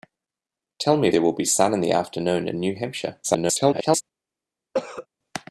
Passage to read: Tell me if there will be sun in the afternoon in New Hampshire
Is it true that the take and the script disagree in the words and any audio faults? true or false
true